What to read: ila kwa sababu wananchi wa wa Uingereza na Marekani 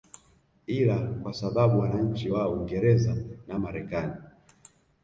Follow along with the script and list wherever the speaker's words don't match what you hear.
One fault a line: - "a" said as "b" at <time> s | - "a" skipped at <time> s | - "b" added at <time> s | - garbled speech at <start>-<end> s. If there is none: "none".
- "wa" skipped at 2.5 s